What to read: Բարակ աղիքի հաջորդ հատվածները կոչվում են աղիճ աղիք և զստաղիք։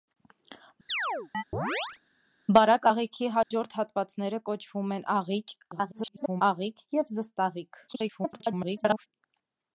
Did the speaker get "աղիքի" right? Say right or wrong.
right